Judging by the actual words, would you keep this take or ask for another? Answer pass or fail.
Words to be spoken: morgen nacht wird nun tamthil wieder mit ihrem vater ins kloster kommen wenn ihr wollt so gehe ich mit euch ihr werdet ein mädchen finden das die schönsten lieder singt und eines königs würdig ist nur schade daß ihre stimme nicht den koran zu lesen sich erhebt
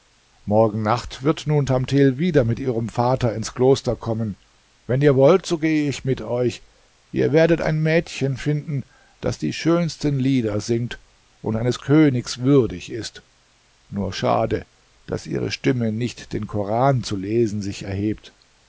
pass